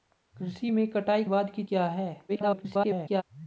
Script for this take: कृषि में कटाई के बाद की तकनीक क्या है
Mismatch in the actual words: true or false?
true